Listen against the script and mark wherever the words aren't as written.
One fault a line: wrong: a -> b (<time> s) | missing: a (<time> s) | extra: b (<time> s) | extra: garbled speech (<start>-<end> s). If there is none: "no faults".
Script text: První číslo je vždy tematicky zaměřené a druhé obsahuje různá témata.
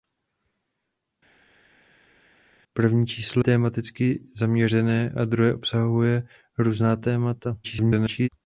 missing: je vždy (3.4 s)
extra: garbled speech (7.6-8.3 s)